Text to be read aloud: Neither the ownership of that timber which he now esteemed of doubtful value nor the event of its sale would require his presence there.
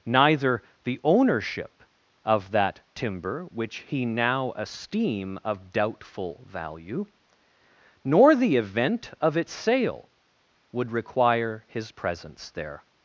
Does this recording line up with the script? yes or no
no